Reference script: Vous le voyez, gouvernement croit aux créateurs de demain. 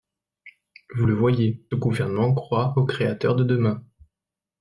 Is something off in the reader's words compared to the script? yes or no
no